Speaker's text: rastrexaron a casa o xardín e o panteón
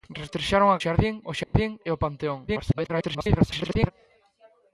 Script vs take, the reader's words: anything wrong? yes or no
yes